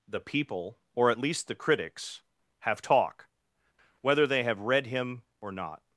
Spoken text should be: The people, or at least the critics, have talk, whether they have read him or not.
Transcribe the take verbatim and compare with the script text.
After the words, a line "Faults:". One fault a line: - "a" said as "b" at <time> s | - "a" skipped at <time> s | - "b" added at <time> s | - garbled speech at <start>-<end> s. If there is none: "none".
The people, or at least the critics, have talk, whether they have read him or not.
Faults:
none